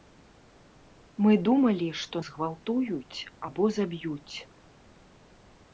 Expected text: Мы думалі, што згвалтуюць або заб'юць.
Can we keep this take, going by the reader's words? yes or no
yes